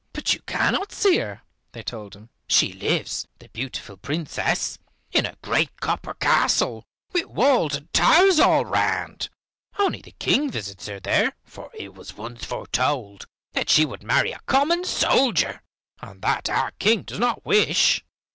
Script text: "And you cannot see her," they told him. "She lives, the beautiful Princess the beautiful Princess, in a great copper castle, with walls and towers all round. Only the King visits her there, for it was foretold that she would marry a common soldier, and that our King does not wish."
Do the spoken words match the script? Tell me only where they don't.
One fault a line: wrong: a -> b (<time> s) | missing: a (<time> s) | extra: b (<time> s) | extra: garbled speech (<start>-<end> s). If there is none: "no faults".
wrong: And -> But (0.1 s)
missing: the beautiful Princess (4.8 s)
extra: once (12.2 s)